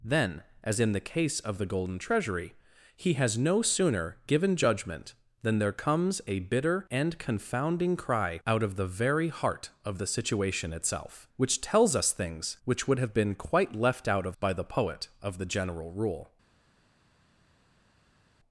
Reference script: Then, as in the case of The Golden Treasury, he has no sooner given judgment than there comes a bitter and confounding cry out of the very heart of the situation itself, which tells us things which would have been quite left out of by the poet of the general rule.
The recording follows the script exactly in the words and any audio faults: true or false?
true